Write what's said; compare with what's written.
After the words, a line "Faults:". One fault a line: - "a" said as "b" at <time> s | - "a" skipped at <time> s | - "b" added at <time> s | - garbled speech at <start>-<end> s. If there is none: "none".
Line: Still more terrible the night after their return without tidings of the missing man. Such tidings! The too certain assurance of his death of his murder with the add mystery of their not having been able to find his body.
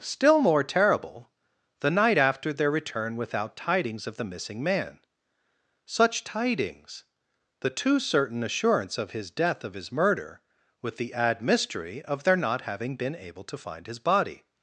Still more terrible the night after their return without tidings of the missing man. Such tidings! The too certain assurance of his death of his murder with the add mystery of their not having been able to find his body.
Faults:
none